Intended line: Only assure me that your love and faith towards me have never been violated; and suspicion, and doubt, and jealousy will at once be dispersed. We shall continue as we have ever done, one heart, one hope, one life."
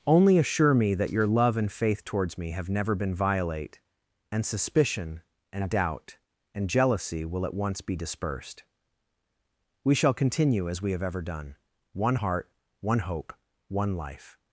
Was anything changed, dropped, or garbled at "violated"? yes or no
yes